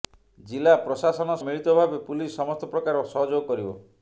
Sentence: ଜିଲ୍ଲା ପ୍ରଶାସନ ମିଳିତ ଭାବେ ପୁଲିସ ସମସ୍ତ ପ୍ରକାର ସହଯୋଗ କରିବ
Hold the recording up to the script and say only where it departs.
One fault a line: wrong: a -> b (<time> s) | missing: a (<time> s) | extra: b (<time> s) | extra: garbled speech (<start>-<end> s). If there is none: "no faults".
no faults